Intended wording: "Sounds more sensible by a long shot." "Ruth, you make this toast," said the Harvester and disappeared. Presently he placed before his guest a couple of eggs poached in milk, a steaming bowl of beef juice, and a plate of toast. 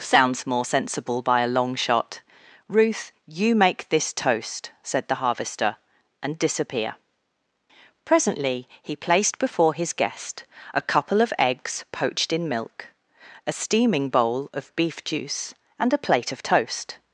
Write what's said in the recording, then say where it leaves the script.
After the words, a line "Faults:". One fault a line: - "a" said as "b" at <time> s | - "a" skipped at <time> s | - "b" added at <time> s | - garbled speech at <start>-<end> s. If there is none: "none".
"Sounds more sensible by a long shot." "Ruth, you make this toast," said the Harvester and disappear. Presently he placed before his guest a couple of eggs poached in milk, a steaming bowl of beef juice, and a plate of toast.
Faults:
- "disappeared" said as "disappear" at 6.4 s